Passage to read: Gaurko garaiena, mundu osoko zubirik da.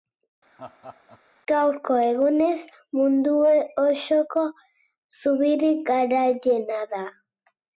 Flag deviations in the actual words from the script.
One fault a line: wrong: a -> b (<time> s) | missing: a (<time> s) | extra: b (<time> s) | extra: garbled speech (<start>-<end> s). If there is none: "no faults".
wrong: garaiena -> egunez (2.1 s)
extra: garaiena (5.9 s)